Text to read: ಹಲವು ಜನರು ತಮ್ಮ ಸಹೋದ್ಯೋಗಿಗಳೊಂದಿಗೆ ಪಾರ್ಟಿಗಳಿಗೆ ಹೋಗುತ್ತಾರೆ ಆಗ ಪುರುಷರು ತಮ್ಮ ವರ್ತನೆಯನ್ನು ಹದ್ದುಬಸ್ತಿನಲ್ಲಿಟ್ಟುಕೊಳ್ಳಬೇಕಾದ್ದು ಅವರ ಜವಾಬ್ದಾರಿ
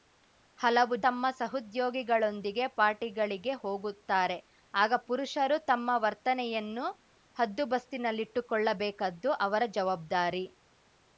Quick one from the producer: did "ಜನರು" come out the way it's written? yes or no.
no